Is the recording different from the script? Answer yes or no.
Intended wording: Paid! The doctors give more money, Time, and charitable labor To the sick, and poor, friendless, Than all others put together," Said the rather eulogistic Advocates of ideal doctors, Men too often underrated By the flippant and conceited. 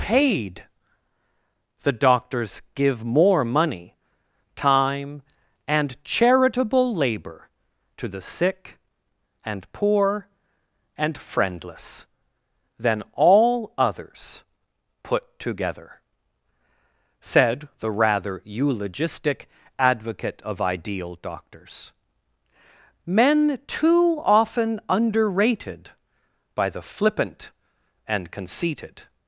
yes